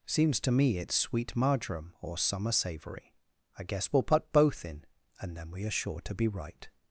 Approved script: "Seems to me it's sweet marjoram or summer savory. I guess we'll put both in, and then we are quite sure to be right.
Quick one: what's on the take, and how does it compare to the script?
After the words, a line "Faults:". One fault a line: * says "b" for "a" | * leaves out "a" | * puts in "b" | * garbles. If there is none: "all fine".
"Seems to me it's sweet marjoram or summer savory. I guess we'll put both in, and then we are sure to be right.
Faults:
* leaves out "quite"